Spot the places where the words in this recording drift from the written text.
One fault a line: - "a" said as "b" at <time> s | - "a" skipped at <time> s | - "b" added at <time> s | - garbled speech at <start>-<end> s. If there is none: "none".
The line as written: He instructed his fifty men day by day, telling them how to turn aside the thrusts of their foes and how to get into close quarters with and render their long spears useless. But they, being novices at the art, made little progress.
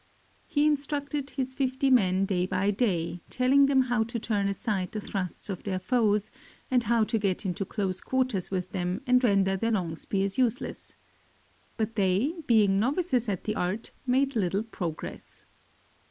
- "them" added at 8.7 s